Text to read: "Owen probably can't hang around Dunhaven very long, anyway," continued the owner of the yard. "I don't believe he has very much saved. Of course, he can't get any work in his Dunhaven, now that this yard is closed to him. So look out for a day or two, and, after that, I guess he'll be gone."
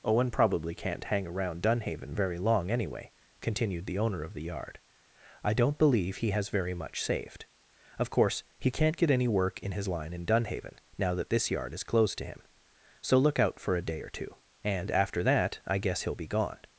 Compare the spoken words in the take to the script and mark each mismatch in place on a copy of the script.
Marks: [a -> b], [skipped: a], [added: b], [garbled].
"Owen probably can't hang around Dunhaven very long, anyway," continued the owner of the yard. "I don't believe he has very much saved. Of course, he can't get any work in his [added: line in] Dunhaven, now that this yard is closed to him. So look out for a day or two, and, after that, I guess he'll be gone."